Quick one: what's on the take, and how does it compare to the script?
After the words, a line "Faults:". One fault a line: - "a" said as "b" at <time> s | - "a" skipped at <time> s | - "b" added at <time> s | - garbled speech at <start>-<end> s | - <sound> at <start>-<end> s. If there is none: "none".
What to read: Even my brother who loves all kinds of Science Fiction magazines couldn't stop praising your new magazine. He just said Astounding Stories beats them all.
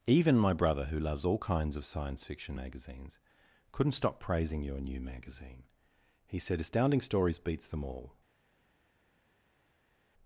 Even my brother who loves all kinds of Science Fiction magazines couldn't stop praising your new magazine. He said Astounding Stories beats them all.
Faults:
- "just" skipped at 6.4 s